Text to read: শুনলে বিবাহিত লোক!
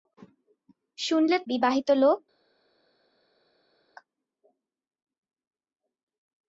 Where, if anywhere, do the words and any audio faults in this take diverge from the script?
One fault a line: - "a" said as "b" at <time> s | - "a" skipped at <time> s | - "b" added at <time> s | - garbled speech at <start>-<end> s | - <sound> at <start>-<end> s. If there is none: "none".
none